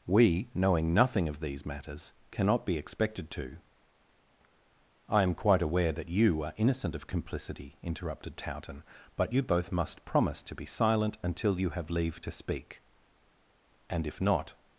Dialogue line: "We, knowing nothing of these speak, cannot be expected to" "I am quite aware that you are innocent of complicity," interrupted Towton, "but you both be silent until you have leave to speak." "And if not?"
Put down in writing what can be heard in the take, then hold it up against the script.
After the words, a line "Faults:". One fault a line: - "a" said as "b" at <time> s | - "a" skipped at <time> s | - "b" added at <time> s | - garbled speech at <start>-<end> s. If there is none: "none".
"We, knowing nothing of these matters, cannot be expected to" "I am quite aware that you are innocent of complicity," interrupted Towton, "but you both must promise to be silent until you have leave to speak." "And if not?"
Faults:
- "speak" said as "matters" at 1.6 s
- "must promise to" added at 9.7 s